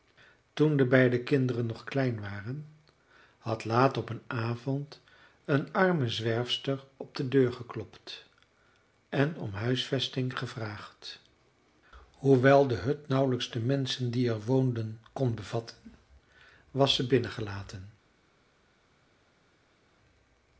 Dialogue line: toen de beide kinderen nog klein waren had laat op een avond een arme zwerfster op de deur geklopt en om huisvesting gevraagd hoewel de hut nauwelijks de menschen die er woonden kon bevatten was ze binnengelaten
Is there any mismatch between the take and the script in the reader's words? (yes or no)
no